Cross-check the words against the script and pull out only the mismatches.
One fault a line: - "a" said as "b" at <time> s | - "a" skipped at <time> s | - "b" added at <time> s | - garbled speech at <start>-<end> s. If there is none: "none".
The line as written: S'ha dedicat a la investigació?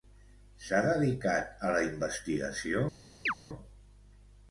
none